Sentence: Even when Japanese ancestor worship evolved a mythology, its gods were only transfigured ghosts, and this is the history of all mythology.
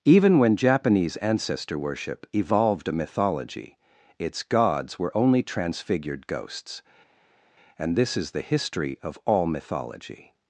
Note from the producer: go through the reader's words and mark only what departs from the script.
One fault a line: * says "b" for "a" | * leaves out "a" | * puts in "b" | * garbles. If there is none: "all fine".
all fine